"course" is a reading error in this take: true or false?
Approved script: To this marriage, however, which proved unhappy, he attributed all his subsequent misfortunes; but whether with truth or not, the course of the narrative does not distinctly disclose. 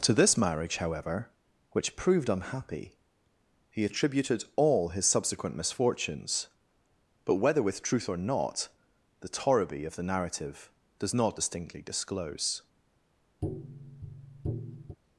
true